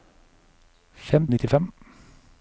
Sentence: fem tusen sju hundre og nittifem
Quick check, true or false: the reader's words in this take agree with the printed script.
false